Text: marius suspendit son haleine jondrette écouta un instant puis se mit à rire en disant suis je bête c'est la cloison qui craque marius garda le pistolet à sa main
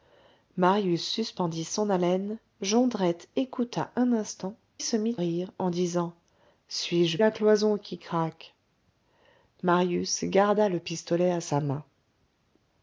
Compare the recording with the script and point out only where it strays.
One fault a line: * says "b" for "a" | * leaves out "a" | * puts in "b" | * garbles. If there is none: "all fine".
* leaves out "puis"
* leaves out "à"
* leaves out "bête c'est"